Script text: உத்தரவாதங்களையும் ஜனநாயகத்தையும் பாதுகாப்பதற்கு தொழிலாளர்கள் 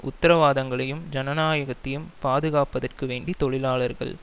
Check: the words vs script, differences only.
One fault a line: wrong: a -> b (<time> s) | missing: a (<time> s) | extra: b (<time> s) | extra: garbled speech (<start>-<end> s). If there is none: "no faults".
extra: வேண்டி (3.1 s)